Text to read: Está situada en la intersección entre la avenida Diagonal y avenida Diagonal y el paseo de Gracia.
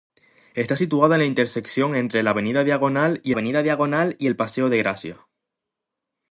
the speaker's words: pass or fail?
pass